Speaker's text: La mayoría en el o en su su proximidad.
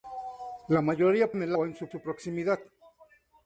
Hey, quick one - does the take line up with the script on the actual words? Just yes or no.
yes